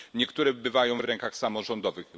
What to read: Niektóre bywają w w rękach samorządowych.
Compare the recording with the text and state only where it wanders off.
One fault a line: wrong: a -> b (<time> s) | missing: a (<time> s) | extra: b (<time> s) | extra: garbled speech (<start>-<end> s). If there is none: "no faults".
no faults